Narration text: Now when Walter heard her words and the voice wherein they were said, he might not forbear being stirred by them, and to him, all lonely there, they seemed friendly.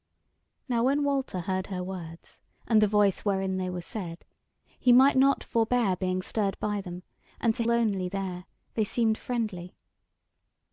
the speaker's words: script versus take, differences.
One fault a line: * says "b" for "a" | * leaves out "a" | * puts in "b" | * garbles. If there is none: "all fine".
* leaves out "him all"